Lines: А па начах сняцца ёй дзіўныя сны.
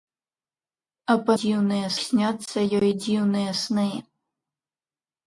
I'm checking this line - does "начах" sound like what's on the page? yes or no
no